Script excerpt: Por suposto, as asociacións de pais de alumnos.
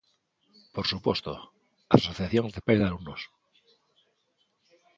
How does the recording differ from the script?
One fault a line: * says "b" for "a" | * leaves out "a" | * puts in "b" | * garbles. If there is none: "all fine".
all fine